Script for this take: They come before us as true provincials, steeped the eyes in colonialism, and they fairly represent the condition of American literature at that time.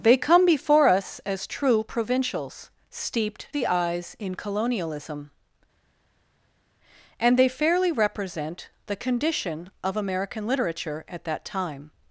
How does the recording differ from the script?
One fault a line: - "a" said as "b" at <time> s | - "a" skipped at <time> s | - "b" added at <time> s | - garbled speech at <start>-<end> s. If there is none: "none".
none